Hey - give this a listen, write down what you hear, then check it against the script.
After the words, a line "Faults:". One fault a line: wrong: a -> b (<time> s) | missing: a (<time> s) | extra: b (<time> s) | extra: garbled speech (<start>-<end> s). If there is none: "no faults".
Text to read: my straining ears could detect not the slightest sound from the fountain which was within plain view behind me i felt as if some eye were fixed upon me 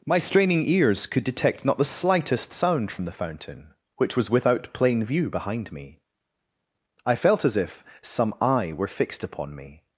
my straining ears could detect not the slightest sound from the fountain which was without plain view behind me i felt as if some eye were fixed upon me
Faults:
wrong: within -> without (4.3 s)